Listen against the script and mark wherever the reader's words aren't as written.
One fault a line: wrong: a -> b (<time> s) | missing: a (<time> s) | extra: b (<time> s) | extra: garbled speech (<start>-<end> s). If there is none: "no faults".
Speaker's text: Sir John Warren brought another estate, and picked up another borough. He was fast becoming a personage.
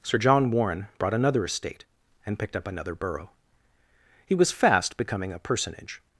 no faults